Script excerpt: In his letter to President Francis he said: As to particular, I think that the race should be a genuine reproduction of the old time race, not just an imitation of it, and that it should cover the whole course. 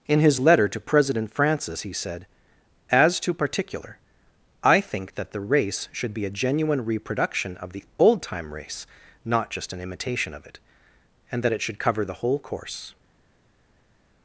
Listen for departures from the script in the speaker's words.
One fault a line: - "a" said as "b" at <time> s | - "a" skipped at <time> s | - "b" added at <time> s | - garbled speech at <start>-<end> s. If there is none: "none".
none